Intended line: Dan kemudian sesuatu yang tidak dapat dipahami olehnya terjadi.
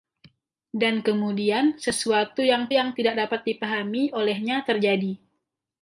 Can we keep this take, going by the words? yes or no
no